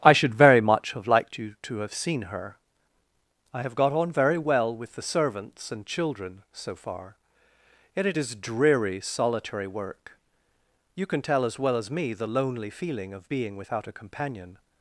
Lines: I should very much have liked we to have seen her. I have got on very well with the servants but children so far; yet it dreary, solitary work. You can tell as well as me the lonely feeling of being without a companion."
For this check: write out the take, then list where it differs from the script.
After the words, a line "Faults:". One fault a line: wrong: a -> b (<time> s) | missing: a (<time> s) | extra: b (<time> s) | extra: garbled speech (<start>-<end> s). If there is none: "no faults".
I should very much have liked you to have seen her. I have got on very well with the servants and children so far; yet it is dreary, solitary work. You can tell as well as me the lonely feeling of being without a companion."
Faults:
wrong: we -> you (1.4 s)
wrong: but -> and (5.7 s)
extra: is (8.2 s)